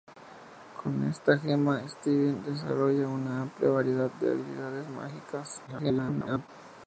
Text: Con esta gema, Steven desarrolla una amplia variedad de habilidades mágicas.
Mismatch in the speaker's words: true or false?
true